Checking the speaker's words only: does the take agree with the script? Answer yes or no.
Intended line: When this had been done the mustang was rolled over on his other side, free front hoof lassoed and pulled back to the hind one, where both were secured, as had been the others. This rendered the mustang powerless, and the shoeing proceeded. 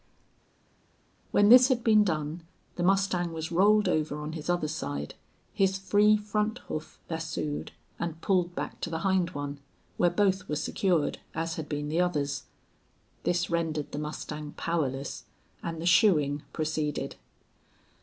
no